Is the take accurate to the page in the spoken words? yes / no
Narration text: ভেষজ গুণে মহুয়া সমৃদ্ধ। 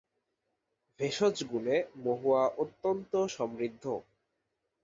no